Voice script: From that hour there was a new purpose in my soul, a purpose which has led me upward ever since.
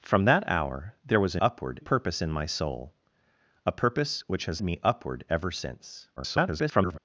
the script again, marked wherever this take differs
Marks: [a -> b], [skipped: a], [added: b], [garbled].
From that hour there was a [new -> upward] purpose in my soul, a purpose which has [skipped: led] me upward ever since. [garbled]